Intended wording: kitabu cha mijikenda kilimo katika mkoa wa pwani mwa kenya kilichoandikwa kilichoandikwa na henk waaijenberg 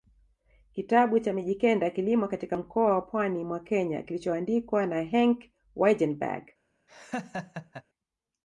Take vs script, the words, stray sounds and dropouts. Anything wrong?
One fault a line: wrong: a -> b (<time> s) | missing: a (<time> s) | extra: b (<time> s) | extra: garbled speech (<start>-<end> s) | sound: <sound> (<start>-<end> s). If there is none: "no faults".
missing: kilichoandikwa (4.9 s)
sound: laugh (6.9-7.8 s)